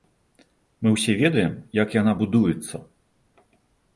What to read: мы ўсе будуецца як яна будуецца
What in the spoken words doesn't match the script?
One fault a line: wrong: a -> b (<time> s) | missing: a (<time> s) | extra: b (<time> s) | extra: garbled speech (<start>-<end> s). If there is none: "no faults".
wrong: будуецца -> ведаем (1.2 s)